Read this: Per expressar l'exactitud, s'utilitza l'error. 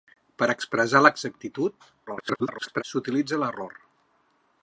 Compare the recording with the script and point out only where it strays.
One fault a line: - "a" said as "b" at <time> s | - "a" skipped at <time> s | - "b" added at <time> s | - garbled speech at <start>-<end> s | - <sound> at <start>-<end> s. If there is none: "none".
- garbled speech at 2.1-2.8 s